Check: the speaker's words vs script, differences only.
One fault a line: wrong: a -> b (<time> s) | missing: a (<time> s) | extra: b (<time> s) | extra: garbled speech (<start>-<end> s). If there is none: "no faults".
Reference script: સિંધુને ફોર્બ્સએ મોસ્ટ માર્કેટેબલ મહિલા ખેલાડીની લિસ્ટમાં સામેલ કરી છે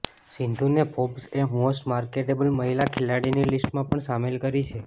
extra: પણ (3.9 s)